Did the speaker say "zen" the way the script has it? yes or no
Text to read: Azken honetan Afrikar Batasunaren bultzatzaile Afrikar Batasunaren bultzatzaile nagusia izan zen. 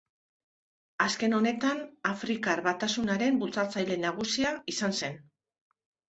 yes